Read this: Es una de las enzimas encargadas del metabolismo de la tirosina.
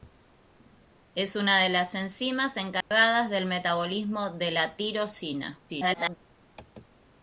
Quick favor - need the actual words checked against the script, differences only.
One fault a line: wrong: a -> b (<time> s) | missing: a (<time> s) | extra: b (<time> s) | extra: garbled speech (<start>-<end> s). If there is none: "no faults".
extra: garbled speech (5.7-6.2 s)